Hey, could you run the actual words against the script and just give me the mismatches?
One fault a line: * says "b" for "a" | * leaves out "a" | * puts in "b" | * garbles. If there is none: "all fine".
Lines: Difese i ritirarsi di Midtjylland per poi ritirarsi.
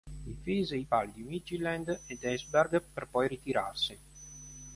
* says "pali" for "ritirarsi"
* puts in "ed Esbjerg"